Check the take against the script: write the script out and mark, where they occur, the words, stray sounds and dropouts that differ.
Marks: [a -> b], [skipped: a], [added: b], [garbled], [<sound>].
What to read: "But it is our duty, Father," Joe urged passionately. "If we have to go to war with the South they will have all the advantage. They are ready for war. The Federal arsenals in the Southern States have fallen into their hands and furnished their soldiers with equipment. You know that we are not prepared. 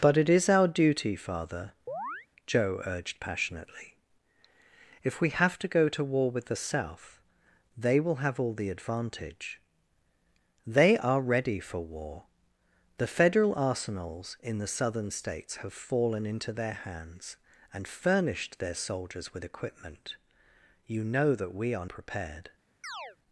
"But it is our duty, Father," [chirp] Joe urged passionately. "If we have to go to war with the South they will have all the advantage. They are ready for war. The Federal arsenals in the Southern States have fallen into their hands and furnished their soldiers with equipment. You know that we are [skipped: not] prepared. [chirp]